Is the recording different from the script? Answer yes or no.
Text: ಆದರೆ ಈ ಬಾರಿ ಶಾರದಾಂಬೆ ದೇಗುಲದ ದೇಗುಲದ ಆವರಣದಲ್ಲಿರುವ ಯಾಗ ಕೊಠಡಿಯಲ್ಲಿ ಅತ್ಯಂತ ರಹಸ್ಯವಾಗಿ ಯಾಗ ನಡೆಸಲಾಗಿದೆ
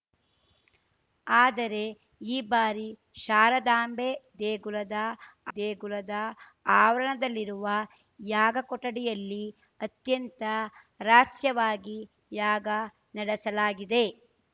no